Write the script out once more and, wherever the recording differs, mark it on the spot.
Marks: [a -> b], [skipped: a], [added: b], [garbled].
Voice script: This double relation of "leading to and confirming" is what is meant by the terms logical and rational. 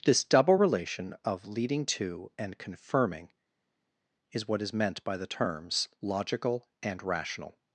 This double relation of "leading to and confirming" is what is meant by the terms logical and rational.